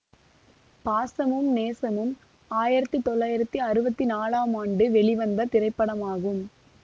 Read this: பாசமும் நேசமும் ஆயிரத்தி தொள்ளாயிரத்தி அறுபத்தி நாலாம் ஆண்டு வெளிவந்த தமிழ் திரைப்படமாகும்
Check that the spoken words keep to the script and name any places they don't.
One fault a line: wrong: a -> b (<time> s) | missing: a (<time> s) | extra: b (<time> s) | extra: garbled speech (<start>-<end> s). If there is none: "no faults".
missing: தமிழ் (5.5 s)